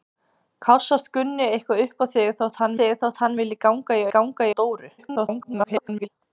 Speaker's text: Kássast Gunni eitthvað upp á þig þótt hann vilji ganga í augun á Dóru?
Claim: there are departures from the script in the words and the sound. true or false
true